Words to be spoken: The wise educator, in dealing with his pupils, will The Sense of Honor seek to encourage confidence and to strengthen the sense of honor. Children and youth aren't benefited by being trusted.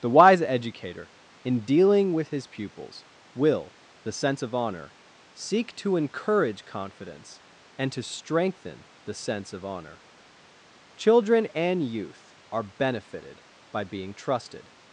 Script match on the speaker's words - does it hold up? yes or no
no